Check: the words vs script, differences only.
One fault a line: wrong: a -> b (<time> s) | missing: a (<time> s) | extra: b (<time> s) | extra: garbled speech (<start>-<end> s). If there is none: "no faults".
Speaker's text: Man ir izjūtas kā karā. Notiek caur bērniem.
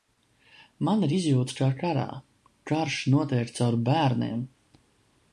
extra: Karš (2.7 s)